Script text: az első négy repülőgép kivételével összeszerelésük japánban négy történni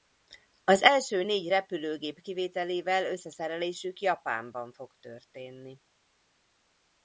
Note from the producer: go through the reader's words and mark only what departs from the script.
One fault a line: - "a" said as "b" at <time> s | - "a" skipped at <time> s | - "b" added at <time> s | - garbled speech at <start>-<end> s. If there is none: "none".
- "négy" said as "fog" at 4.7 s